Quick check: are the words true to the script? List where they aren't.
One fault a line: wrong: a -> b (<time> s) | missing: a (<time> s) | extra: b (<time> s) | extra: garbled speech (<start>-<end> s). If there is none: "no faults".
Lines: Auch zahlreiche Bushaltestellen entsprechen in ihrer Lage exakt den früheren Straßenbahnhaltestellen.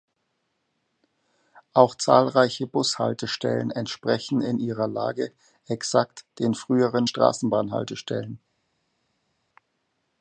no faults